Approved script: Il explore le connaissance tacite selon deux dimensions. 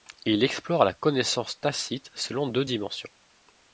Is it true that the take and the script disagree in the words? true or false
true